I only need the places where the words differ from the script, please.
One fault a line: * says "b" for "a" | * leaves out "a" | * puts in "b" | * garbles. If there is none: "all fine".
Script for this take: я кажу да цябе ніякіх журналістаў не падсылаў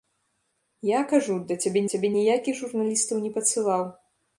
* puts in "цябе"